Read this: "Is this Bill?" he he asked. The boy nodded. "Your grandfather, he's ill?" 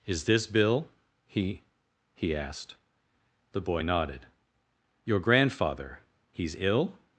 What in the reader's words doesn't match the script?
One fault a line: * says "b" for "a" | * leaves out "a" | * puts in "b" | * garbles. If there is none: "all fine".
all fine